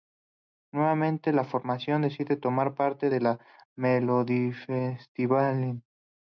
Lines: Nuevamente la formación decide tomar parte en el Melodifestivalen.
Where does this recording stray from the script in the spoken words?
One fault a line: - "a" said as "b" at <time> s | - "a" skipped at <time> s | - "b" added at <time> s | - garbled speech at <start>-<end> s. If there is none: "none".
none